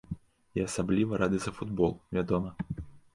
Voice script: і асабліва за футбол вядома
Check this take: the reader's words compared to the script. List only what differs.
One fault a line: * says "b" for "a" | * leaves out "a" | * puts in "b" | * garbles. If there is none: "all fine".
* puts in "рады"